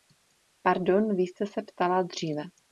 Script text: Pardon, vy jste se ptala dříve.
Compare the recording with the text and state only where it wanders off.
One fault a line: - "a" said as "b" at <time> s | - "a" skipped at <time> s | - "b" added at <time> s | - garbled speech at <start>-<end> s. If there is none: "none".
none